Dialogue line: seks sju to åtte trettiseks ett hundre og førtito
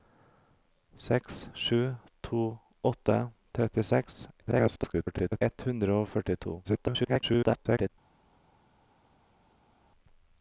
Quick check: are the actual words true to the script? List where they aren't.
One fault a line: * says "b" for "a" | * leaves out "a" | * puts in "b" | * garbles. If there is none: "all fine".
* garbles
* garbles